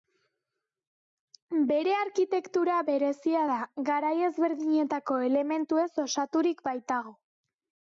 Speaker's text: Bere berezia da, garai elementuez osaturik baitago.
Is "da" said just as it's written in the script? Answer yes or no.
yes